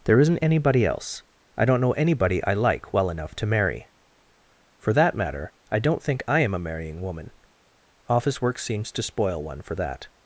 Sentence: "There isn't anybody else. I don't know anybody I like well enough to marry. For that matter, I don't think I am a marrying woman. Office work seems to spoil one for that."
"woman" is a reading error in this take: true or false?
false